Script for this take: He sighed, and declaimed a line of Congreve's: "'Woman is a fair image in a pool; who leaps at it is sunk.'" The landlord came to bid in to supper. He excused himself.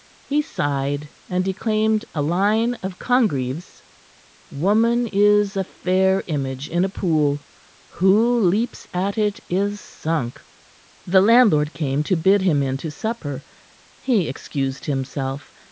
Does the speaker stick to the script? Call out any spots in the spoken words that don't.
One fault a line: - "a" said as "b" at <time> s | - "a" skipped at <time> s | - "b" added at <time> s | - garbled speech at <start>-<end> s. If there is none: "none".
- "him" added at 12.4 s